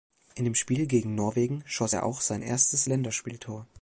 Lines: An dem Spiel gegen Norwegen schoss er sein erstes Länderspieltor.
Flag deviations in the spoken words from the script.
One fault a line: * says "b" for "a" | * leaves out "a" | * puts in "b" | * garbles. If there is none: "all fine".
* says "In" for "An"
* puts in "auch"